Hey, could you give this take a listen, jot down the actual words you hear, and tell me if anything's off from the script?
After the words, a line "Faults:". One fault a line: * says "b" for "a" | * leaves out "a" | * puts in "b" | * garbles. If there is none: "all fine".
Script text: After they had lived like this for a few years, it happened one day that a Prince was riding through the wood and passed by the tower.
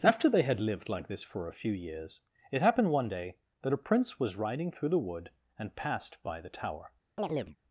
After they had lived like this for a few years, it happened one day that a Prince was riding through the wood and passed by the tower.
Faults:
all fine